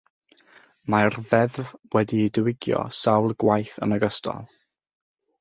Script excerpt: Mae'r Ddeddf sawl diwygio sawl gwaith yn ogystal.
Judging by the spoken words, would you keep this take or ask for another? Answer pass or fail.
fail